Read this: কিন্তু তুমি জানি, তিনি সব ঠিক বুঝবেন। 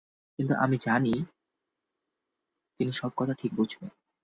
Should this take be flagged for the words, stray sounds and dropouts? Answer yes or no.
yes